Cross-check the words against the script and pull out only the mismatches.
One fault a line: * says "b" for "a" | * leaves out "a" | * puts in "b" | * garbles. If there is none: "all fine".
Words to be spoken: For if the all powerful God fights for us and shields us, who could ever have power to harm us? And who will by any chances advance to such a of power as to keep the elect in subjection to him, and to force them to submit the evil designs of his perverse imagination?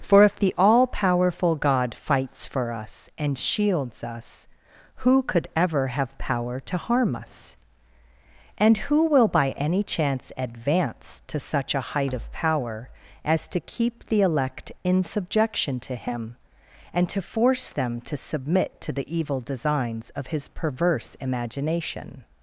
* says "chance" for "chances"
* puts in "height"
* puts in "to"